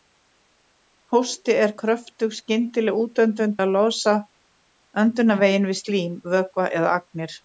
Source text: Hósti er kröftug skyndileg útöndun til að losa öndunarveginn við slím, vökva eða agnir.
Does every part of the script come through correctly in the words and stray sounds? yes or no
no